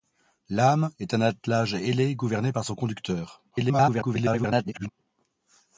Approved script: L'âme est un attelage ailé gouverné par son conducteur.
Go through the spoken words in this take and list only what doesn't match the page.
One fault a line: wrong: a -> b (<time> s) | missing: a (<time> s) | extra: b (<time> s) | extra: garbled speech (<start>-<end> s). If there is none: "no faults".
extra: garbled speech (3.5-4.9 s)